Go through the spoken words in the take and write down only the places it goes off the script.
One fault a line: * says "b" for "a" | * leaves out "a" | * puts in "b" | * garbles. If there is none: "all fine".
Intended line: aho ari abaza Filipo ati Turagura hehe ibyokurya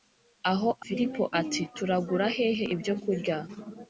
* leaves out "ari abaza"